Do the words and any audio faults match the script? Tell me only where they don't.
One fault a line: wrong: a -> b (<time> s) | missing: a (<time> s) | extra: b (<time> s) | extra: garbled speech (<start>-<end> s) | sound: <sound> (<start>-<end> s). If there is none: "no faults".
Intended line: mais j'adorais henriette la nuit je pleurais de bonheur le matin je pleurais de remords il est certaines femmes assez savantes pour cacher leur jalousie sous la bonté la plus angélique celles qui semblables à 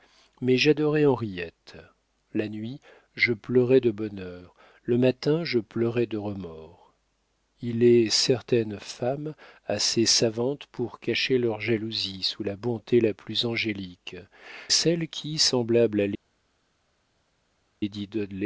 no faults